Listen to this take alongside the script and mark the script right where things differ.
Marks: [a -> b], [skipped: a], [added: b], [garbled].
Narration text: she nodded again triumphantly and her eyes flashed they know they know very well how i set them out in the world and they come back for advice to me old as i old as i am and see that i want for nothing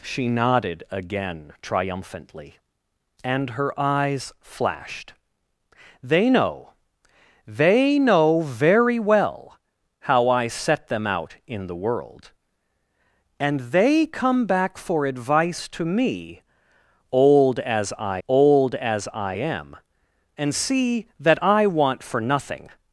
she nodded again triumphantly and her eyes flashed they know they know very well how i set them out in the world and they come back for advice to me old as i old as i am and see that i want for nothing